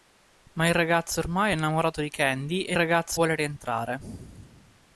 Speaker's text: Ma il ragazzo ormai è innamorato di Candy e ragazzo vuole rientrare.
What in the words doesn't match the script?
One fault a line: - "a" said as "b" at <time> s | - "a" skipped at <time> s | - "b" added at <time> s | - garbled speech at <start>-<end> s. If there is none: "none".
none